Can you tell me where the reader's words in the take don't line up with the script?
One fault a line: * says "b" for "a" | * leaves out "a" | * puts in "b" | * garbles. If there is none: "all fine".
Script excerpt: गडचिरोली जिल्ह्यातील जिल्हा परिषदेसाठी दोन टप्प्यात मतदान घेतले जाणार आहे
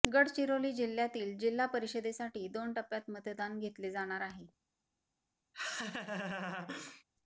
all fine